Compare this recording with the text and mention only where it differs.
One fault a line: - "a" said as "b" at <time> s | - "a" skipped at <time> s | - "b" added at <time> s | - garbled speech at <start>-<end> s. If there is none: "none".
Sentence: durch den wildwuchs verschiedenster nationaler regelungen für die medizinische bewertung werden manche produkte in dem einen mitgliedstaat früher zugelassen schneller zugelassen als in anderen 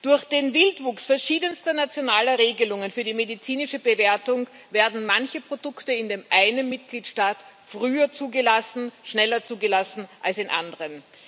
none